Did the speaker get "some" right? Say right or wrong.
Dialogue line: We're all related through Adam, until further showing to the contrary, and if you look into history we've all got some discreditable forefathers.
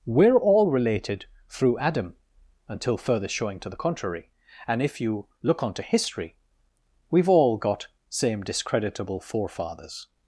wrong